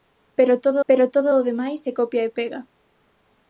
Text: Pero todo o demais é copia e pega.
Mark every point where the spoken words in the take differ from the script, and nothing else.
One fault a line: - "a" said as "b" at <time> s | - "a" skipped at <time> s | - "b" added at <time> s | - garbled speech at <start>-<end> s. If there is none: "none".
- "pero todo" added at 0.9 s